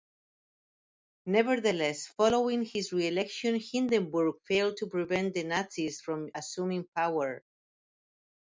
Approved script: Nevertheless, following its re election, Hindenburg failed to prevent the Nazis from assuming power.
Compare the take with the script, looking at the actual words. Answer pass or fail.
fail